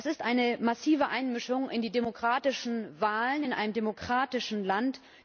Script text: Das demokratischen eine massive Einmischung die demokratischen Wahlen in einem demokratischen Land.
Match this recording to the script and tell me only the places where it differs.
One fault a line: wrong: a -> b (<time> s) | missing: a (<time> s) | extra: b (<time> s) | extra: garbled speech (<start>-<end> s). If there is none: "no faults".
wrong: demokratischen -> ist (0.1 s)
extra: in (1.7 s)